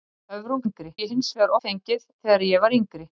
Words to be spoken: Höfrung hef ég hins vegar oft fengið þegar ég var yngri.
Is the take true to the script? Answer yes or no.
no